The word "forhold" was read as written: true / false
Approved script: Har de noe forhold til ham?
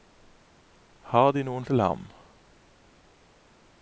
false